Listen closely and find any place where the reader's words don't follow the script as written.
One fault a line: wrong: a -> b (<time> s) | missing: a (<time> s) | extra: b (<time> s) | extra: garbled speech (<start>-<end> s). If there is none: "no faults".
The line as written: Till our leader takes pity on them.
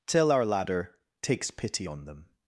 wrong: leader -> ladder (0.5 s)